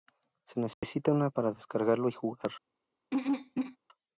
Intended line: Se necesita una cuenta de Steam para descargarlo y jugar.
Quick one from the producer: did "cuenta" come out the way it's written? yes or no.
no